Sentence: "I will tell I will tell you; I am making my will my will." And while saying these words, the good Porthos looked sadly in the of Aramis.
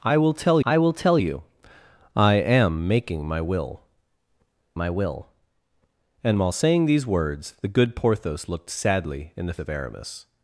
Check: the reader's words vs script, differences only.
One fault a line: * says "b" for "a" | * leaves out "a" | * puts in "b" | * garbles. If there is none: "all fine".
all fine